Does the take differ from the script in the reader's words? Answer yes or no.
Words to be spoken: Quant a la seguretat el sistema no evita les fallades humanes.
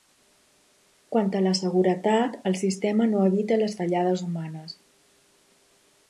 no